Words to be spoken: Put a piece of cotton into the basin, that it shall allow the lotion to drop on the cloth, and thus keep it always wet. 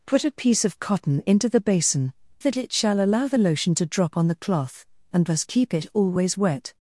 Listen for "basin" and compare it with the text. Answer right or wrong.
right